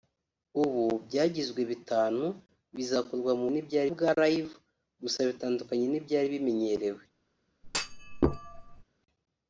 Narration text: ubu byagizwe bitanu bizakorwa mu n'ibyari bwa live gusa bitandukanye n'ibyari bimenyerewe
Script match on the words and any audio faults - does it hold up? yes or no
no